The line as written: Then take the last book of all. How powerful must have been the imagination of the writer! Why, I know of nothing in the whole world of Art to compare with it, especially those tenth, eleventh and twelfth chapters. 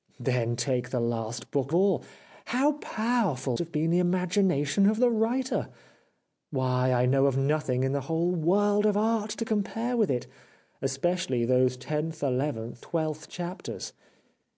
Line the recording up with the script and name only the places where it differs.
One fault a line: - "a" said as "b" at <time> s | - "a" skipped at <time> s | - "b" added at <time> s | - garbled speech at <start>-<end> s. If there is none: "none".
- "of" skipped at 1.7 s
- "must" skipped at 3.6 s
- "and" skipped at 12.8 s